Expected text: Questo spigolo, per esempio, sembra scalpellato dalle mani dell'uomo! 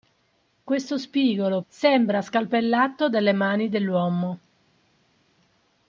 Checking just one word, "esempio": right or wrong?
wrong